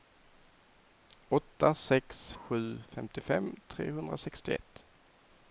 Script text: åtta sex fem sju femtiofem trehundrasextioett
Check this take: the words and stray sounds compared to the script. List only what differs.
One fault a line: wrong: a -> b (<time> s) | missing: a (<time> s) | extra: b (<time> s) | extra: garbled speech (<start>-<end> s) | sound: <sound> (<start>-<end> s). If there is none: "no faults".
missing: fem (2.3 s)